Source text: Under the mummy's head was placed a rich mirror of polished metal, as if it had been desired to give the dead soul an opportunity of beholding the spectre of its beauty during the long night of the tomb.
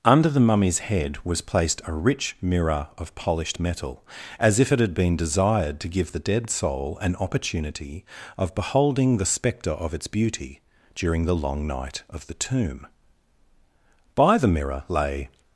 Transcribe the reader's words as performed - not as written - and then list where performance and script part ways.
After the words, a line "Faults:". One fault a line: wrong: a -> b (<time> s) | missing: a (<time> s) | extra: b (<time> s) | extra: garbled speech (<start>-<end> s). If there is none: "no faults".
Under the mummy's head was placed a rich mirror of polished metal, as if it had been desired to give the dead soul an opportunity of beholding the spectre of its beauty during the long night of the tomb. By the mirror lay
Faults:
extra: By the mirror lay (14.2 s)